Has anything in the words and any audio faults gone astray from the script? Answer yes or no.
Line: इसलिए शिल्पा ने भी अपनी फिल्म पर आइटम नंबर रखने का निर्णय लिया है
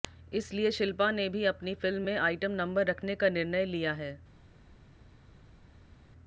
yes